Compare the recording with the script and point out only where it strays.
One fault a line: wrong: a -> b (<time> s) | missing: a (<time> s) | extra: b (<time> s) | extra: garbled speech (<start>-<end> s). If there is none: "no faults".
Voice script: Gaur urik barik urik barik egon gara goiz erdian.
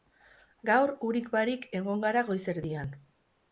missing: urik barik (1.7 s)